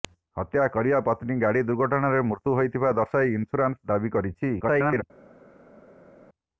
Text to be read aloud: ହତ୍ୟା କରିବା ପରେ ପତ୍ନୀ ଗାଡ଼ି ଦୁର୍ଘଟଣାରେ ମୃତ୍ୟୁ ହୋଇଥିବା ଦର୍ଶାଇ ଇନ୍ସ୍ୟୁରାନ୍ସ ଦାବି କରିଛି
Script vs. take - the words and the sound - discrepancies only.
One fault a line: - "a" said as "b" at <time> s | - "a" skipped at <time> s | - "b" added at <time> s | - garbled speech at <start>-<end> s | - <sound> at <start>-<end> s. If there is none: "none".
- "ପରେ" skipped at 1.0 s
- garbled speech at 4.6-5.0 s